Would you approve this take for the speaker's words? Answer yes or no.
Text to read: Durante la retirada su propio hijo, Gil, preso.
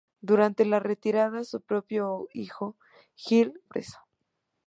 yes